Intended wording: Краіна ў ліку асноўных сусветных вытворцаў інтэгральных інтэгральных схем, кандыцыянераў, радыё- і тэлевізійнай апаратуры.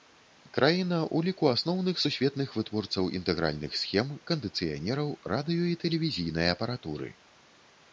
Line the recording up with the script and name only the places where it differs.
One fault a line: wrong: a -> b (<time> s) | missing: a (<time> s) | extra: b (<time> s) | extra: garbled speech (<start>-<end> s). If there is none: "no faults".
missing: інтэгральных (3.7 s)